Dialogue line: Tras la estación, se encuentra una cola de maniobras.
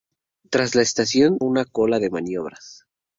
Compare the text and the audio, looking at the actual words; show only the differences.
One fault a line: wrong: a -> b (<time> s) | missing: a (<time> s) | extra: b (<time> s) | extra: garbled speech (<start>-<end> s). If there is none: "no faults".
missing: se encuentra (1.4 s)